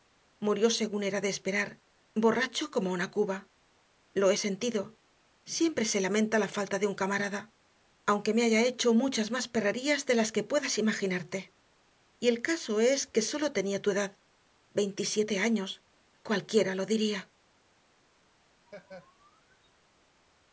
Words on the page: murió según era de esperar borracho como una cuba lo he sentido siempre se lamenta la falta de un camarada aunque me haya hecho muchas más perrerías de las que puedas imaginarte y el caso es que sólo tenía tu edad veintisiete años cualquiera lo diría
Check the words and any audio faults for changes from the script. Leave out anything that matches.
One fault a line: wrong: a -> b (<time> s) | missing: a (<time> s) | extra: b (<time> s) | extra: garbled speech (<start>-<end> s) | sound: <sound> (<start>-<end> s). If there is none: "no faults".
sound: laugh (18.7-19.7 s)